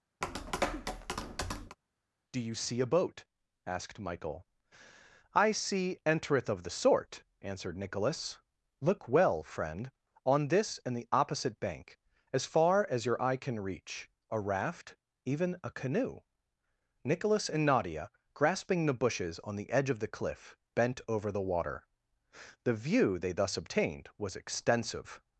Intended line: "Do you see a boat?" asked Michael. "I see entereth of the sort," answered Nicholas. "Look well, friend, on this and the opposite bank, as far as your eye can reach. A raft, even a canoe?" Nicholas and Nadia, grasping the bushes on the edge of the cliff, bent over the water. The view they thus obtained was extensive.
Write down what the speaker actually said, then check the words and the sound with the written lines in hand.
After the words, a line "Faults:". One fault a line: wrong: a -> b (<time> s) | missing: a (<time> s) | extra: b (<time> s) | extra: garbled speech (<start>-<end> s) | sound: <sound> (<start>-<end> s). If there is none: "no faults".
"Do you see a boat?" asked Michael. "I see entereth of the sort," answered Nicholas. "Look well, friend, on this and the opposite bank, as far as your eye can reach. A raft, even a canoe?" Nicholas and Nadia, grasping the bushes on the edge of the cliff, bent over the water. The view they thus obtained was extensive.
Faults:
sound: tap (0.2-1.8 s)